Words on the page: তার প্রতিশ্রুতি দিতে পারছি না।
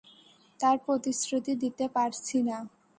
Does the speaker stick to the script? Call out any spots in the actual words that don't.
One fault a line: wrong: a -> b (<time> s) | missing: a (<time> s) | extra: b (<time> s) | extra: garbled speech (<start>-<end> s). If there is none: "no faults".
no faults